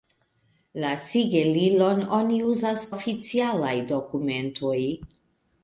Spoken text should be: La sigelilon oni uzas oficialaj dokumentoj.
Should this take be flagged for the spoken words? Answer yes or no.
no